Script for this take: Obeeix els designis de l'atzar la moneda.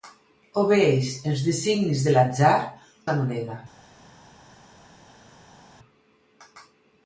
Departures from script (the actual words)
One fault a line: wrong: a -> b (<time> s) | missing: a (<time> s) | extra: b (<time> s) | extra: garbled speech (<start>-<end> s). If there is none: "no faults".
no faults